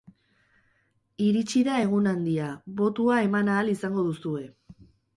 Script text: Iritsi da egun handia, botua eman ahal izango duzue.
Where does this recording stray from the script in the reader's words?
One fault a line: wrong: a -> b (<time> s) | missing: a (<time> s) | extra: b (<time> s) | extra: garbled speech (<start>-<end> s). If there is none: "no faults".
no faults